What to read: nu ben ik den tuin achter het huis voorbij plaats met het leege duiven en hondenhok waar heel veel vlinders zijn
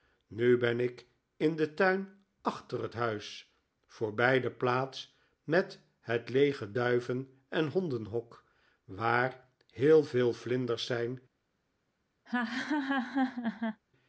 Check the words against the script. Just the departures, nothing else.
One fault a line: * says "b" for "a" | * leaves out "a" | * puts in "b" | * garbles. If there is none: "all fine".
* puts in "in"
* puts in "de"